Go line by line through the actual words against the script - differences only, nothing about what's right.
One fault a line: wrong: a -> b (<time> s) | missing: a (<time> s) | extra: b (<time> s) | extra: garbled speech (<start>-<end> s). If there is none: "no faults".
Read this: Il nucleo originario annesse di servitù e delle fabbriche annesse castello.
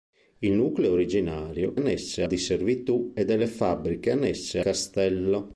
no faults